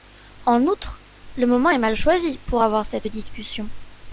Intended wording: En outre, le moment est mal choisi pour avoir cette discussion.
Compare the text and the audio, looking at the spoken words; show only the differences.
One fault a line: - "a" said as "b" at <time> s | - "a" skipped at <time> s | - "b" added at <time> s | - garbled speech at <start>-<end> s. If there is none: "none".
none